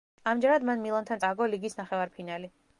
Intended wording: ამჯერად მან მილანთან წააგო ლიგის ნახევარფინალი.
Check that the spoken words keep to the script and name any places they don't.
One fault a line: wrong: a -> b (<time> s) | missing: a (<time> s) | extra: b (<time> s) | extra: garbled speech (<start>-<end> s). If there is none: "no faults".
no faults